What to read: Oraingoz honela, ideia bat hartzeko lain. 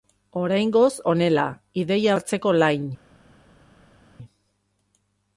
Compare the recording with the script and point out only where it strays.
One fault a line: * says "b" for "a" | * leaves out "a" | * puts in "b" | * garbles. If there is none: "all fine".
* leaves out "bat"